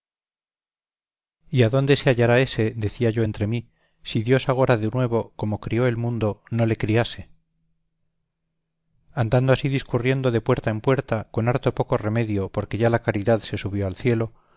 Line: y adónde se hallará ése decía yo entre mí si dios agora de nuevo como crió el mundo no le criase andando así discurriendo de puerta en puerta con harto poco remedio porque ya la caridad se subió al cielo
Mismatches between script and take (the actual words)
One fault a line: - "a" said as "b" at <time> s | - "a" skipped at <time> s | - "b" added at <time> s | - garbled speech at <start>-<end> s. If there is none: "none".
none